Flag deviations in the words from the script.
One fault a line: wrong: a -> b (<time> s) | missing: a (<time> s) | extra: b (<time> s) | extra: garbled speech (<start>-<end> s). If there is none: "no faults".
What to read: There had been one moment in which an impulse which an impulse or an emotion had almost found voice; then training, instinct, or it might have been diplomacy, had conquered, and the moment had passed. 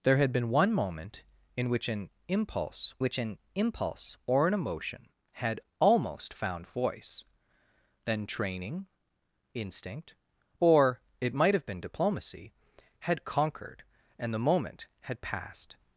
no faults